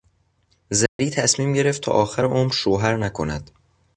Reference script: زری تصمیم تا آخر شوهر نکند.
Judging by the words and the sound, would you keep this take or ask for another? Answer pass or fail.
fail